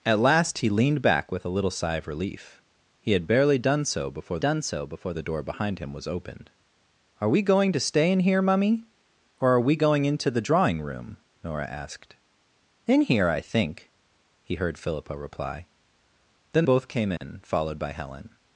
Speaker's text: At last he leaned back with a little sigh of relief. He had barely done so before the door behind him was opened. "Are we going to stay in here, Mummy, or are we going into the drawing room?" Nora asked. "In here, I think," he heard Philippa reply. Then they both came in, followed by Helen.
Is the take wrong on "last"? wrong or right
right